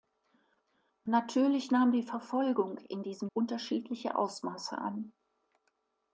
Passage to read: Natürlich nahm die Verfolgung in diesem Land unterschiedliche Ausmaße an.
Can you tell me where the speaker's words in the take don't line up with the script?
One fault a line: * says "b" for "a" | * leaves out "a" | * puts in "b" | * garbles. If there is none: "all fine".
* leaves out "Land"